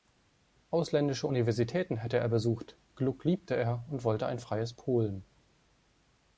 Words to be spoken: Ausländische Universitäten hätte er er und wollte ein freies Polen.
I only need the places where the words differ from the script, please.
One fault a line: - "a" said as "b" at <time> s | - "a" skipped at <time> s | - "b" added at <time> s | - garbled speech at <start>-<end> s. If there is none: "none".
- "besucht Gluck liebte" added at 2.3 s